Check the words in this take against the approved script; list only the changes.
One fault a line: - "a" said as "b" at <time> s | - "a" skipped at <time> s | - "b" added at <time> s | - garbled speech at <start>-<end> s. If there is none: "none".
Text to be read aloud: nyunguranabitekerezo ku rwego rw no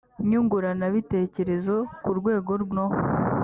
none